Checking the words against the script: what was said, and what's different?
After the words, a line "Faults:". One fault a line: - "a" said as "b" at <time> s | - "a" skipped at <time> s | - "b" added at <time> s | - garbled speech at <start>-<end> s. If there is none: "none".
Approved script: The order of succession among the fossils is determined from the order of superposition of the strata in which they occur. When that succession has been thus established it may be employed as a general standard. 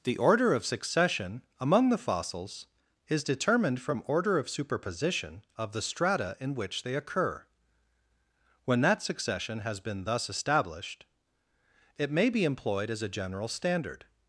The order of succession among the fossils is determined from order of superposition of the strata in which they occur. When that succession has been thus established it may be employed as a general standard.
Faults:
- "the" skipped at 4.0 s